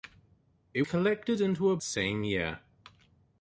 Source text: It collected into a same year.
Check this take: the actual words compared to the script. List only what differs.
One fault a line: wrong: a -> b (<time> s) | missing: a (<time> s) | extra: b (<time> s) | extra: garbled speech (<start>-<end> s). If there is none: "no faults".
no faults